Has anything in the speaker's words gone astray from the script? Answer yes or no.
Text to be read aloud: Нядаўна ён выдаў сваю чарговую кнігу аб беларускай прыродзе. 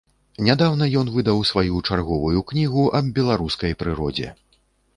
no